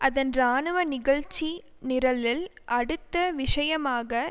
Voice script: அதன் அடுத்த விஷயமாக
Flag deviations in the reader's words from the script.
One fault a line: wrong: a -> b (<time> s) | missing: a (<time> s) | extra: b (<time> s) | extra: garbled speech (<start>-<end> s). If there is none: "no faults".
extra: இராணுவ நிகழ்ச்சி நிரலில் (0.3 s)